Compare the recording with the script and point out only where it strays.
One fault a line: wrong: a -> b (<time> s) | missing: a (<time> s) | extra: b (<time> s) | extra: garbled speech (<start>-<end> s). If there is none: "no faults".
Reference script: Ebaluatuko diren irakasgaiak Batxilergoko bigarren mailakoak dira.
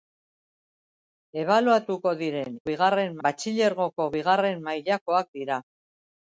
wrong: irakasgaiak -> bigarren (2.7 s)